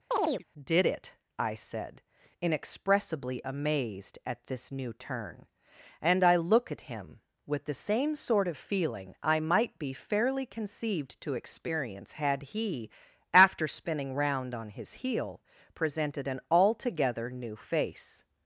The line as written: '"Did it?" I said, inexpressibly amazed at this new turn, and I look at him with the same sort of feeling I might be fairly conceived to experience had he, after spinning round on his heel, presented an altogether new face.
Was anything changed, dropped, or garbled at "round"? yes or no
no